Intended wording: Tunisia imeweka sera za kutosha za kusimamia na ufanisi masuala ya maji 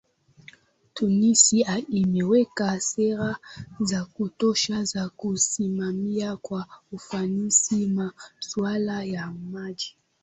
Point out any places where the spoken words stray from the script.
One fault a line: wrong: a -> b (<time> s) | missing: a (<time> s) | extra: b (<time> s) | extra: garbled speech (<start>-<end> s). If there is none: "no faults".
wrong: na -> kwa (6.4 s)